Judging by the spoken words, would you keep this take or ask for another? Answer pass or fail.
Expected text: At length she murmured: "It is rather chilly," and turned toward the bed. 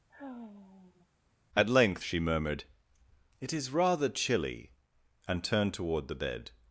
pass